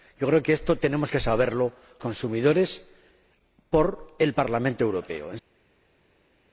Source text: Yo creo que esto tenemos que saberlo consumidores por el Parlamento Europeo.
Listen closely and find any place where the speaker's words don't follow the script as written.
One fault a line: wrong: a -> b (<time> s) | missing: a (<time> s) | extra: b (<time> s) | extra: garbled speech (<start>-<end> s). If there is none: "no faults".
no faults